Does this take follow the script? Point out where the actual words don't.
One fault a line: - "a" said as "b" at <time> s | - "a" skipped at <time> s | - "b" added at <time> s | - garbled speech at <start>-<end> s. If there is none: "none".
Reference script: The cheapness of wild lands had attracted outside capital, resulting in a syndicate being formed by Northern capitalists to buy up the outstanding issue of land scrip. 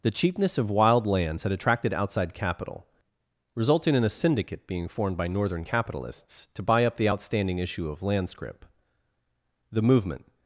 - "The movement" added at 9.7 s